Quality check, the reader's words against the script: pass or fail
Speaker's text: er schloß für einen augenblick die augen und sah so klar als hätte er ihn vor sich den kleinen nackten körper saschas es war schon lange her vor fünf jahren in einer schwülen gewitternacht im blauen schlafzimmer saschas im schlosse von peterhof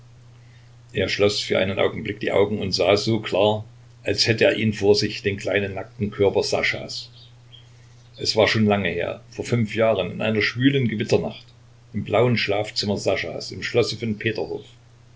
pass